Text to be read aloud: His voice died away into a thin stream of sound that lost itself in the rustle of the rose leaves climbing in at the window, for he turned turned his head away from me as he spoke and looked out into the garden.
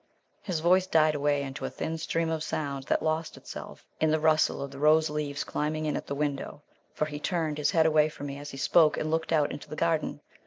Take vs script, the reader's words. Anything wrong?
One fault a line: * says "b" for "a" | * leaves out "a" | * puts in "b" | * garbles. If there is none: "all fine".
* leaves out "turned"